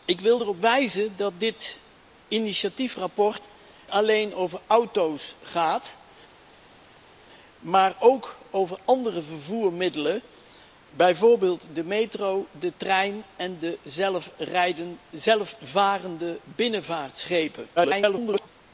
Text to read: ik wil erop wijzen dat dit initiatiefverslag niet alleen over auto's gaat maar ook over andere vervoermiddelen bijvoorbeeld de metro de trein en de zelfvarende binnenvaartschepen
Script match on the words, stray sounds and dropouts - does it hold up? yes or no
no